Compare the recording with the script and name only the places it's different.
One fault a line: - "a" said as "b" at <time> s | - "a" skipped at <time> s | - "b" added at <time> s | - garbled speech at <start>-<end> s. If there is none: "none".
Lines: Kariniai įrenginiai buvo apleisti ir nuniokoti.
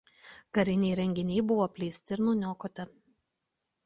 none